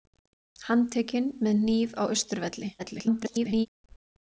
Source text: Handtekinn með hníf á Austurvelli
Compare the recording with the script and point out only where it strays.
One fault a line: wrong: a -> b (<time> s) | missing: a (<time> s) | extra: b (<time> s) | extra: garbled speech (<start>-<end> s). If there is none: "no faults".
extra: garbled speech (2.8-3.7 s)